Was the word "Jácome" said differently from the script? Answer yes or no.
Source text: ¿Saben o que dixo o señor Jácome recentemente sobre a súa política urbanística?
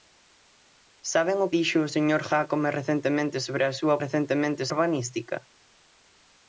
no